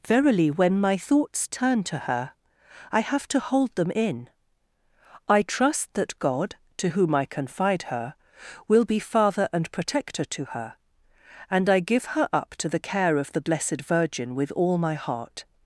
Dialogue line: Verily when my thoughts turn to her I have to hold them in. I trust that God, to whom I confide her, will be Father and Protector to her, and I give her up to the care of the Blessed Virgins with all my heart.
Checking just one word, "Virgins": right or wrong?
wrong